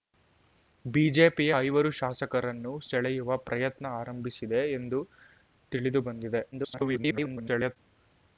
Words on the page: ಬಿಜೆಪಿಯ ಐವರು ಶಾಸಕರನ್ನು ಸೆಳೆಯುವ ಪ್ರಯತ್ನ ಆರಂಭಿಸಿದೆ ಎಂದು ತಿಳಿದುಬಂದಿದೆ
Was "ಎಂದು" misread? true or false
false